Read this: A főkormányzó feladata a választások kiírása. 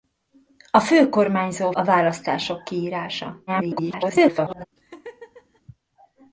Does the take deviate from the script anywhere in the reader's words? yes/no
yes